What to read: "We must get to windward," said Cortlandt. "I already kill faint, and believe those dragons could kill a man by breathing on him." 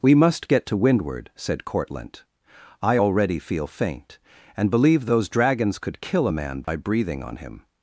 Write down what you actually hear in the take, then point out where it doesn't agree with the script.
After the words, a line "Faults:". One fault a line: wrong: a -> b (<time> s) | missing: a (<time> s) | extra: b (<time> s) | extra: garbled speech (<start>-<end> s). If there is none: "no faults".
"We must get to windward," said Cortlandt. "I already feel faint, and believe those dragons could kill a man by breathing on him."
Faults:
wrong: kill -> feel (3.4 s)